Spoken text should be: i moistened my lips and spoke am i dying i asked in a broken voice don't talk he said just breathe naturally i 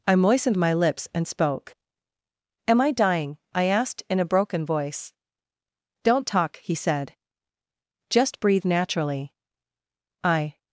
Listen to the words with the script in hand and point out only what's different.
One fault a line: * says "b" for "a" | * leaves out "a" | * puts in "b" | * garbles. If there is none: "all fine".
all fine